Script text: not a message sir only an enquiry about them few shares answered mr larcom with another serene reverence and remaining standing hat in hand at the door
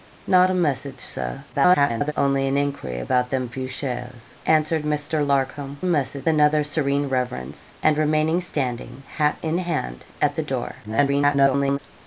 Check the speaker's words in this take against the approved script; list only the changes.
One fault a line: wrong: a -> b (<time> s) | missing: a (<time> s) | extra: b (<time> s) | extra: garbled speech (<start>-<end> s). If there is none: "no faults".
extra: garbled speech (1.5-2.1 s)
wrong: with -> message (5.8 s)
extra: garbled speech (10.8-11.8 s)